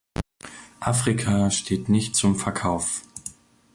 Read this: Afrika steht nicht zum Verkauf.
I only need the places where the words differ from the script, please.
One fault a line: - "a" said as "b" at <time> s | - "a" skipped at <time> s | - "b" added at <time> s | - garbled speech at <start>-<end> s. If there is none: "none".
none